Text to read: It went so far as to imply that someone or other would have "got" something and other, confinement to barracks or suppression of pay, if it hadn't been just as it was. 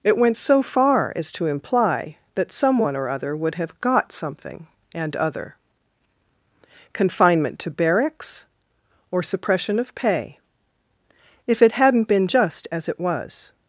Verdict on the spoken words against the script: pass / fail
pass